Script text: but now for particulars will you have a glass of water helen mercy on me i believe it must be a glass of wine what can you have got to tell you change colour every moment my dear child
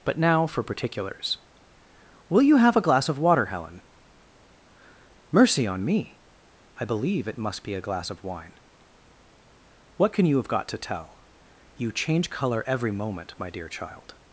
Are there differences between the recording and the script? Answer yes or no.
no